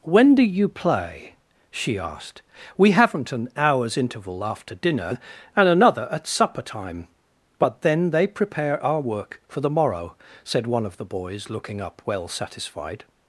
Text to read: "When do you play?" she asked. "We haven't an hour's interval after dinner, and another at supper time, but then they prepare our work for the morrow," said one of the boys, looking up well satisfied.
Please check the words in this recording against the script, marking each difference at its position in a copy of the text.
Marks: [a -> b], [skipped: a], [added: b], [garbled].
"When do you play?" she asked. "We haven't an hour's interval after dinner, and another at supper time, but then they prepare our work for the morrow," said one of the boys, looking up well satisfied.